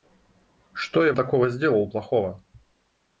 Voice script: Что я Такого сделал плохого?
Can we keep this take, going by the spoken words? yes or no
yes